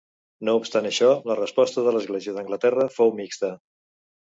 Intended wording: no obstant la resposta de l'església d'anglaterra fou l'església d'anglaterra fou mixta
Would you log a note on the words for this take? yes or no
yes